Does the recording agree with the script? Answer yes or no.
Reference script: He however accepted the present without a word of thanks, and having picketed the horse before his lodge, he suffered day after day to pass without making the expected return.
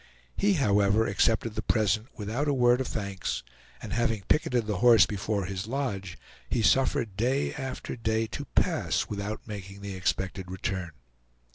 yes